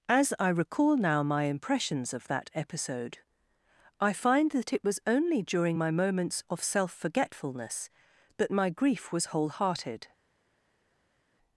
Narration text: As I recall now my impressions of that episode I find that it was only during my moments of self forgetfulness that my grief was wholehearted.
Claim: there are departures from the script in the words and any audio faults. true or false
false